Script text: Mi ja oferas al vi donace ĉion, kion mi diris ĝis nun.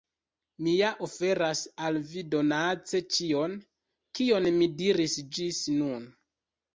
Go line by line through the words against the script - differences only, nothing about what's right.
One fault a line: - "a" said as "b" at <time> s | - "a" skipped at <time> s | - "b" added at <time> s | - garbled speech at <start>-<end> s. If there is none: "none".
none